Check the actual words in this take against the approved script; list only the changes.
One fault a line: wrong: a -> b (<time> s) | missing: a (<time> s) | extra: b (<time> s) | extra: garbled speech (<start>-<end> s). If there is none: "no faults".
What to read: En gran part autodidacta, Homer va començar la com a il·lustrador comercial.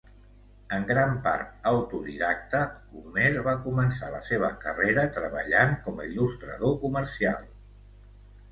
extra: seva carrera treballant (4.3 s)